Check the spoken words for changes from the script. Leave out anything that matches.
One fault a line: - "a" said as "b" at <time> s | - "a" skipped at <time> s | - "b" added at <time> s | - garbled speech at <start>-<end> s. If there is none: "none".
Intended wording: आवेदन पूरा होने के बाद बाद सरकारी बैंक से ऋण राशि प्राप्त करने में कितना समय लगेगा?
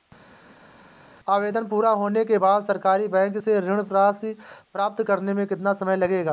- "बाद" skipped at 2.6 s